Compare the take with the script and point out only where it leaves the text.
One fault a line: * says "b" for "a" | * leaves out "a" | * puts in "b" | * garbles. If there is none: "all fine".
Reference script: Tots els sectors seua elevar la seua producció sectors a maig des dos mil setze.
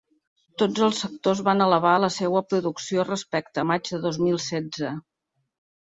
* says "van" for "seua"
* says "respecte" for "sectors"
* says "de" for "des"